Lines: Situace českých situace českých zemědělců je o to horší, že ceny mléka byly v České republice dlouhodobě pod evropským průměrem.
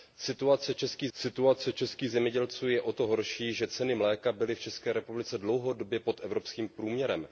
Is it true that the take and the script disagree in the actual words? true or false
false